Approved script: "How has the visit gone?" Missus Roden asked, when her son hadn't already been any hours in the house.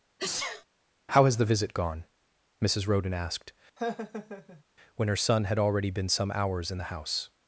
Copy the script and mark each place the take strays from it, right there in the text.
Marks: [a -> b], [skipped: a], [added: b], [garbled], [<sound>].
[sneeze] "How has the visit gone?" Missus Roden asked, [laugh] when her son [hadn't -> had] already been [any -> some] hours in the house.